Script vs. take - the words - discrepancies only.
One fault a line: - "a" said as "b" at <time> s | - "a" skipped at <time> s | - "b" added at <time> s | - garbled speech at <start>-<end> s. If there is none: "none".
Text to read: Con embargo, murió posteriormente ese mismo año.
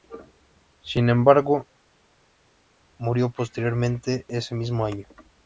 - "Con" said as "Sin" at 0.8 s